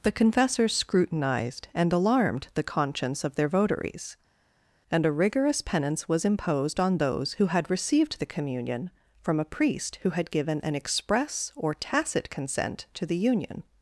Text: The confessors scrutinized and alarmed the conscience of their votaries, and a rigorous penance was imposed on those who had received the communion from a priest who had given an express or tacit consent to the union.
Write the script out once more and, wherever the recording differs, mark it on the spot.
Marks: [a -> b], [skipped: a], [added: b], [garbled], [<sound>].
The confessors scrutinized and alarmed the conscience of their votaries, and a rigorous penance was imposed on those who had received the communion from a priest who had given an express or tacit consent to the union.